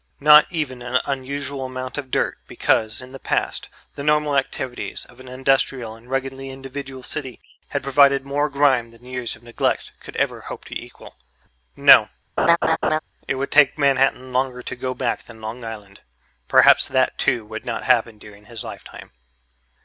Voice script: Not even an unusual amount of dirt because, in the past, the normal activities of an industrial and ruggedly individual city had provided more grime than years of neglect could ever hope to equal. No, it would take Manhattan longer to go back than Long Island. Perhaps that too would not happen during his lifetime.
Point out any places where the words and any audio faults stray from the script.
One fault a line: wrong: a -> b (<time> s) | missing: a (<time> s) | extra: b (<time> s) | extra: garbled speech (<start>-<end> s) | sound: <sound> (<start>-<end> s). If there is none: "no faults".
sound: laugh (12.4-13.0 s)